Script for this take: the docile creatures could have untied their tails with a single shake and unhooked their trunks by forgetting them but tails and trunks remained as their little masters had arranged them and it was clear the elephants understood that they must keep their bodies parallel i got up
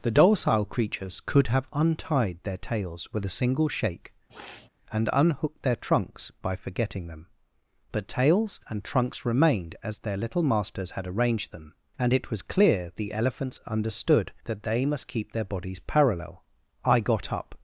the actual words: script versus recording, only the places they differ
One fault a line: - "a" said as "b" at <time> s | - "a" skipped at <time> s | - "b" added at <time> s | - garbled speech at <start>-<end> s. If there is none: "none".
none